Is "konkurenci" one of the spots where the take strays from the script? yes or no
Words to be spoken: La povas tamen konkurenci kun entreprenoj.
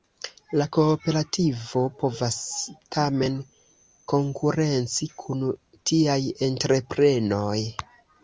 no